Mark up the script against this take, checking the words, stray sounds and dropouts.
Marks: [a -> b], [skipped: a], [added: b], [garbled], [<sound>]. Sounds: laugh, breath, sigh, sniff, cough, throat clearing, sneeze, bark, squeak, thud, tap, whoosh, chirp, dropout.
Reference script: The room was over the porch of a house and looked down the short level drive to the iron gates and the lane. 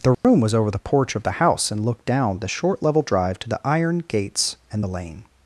The room [dropout] was over the porch of [a -> the] house and looked down the short level drive to the iron gates and the lane.